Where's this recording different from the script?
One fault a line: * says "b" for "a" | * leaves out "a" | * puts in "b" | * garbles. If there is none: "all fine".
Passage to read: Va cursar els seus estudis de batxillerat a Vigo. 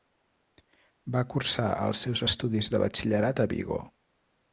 all fine